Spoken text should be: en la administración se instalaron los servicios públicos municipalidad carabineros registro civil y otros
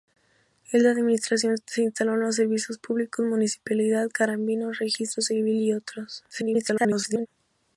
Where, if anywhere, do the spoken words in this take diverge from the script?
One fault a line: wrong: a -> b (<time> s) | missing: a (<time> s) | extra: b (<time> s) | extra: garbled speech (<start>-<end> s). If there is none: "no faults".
extra: garbled speech (6.3-7.3 s)